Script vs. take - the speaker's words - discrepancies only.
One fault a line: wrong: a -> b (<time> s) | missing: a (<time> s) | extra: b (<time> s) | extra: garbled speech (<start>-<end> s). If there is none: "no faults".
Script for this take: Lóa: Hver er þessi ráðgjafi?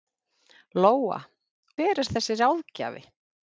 no faults